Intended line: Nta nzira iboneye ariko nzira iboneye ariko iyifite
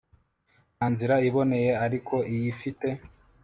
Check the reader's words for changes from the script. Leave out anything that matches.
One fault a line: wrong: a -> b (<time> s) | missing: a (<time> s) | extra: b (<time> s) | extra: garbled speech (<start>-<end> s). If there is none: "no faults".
missing: nzira iboneye ariko (2.1 s)